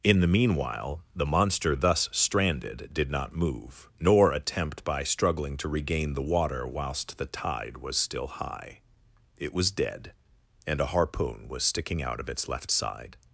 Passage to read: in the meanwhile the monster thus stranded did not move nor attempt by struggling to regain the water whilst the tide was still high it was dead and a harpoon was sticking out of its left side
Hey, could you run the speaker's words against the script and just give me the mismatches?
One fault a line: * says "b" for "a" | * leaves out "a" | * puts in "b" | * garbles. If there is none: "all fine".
all fine